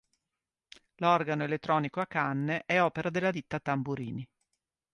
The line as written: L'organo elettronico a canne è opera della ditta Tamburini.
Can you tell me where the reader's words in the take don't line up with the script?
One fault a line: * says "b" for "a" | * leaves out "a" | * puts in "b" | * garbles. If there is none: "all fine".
all fine